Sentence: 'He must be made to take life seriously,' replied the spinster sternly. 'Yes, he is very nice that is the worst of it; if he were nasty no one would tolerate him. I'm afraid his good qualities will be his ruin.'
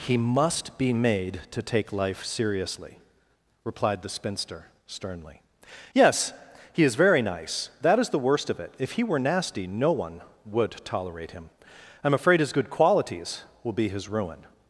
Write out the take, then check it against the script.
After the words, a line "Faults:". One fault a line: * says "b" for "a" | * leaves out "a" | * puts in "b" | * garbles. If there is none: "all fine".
'He must be made to take life seriously,' replied the spinster sternly. 'Yes, he is very nice that is the worst of it; if he were nasty no one would tolerate him. I'm afraid his good qualities will be his ruin.'
Faults:
all fine